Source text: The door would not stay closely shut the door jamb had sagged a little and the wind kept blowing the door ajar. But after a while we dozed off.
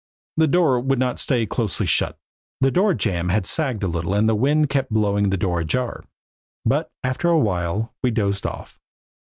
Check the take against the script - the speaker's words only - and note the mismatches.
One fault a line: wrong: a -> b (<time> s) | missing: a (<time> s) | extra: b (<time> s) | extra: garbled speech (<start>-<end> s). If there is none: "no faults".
no faults